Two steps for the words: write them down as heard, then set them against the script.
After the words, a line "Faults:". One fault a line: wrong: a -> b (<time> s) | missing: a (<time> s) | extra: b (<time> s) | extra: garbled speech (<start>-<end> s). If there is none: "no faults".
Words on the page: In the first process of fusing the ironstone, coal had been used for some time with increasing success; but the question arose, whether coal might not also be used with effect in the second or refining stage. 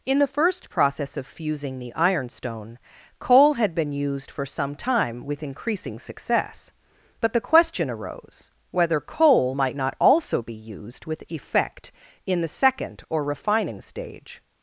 In the first process of fusing the ironstone, coal had been used for some time with increasing success; but the question arose, whether coal might not also be used with effect in the second or refining stage.
Faults:
no faults